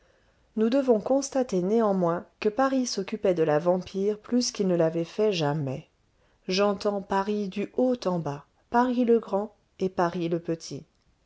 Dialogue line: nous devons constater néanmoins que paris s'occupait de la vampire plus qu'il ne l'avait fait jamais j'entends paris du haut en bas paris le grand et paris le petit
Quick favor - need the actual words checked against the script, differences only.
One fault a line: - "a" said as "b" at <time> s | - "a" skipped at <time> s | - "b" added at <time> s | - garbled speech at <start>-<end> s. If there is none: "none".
none